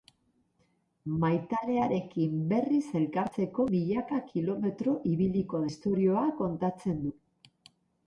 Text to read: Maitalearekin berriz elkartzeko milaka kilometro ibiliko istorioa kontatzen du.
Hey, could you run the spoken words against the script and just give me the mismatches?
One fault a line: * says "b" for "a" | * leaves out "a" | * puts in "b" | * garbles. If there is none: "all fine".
all fine